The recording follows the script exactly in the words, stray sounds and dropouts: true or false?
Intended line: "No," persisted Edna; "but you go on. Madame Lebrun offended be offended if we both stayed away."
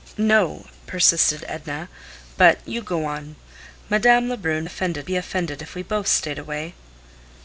true